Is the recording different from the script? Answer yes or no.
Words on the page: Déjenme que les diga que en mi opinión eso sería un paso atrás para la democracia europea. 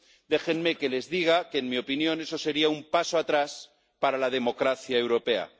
no